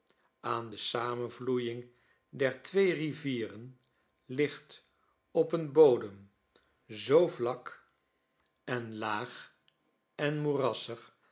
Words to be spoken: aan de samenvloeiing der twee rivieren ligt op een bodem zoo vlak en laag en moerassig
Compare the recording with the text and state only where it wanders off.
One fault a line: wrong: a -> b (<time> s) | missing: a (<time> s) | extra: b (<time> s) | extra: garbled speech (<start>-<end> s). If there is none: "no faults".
no faults